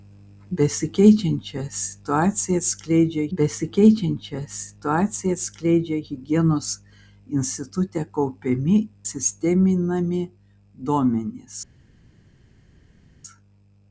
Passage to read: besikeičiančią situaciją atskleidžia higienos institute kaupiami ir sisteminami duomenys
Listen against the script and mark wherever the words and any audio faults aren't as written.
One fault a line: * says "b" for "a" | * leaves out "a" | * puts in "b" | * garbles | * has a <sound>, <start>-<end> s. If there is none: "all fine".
* puts in "besikeičiančią situaciją atskleidžia"
* leaves out "ir"